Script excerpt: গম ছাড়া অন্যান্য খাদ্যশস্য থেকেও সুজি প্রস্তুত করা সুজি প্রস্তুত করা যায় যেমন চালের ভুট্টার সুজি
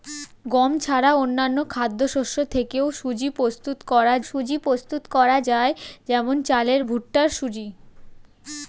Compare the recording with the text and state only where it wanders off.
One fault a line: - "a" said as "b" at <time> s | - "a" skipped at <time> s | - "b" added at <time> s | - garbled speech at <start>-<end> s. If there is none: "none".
none